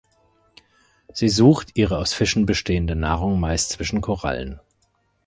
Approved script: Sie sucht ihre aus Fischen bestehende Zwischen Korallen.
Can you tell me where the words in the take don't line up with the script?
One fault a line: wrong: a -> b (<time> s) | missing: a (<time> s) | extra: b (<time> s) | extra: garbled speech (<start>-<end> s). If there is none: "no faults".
extra: Nahrung meist (3.0 s)